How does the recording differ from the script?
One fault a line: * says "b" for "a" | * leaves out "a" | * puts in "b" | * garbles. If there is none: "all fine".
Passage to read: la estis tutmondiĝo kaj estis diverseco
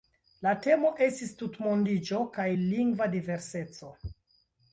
* puts in "temo"
* says "lingva" for "estis"